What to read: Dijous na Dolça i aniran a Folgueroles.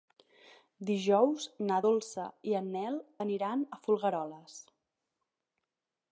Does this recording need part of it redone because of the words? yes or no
yes